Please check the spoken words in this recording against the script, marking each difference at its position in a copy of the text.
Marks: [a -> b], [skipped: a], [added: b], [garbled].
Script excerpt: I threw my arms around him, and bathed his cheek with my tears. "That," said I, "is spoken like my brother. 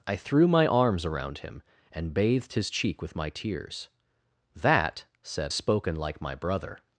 I threw my arms around him, and bathed his cheek with my tears. "That," said [skipped: I, "is] spoken like my brother.